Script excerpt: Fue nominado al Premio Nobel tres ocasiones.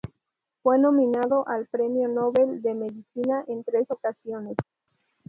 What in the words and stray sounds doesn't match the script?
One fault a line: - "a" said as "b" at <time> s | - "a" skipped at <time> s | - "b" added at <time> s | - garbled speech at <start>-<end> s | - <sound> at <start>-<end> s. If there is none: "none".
- "de Medicina en" added at 2.6 s